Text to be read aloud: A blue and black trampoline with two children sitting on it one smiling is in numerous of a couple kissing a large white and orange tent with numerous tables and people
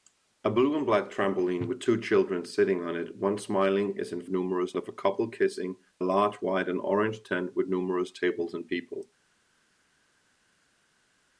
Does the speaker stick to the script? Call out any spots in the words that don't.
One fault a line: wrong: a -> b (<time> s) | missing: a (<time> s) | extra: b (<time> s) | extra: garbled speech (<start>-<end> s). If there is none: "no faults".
no faults